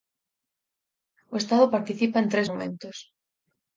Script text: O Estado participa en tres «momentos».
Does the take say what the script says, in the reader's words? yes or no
yes